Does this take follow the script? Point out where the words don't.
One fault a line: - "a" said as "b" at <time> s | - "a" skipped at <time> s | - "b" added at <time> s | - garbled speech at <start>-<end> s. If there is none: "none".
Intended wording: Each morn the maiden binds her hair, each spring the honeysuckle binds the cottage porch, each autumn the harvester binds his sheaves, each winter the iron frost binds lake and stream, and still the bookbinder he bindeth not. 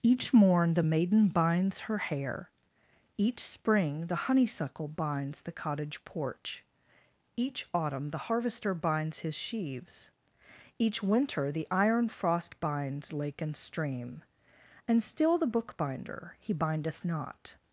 none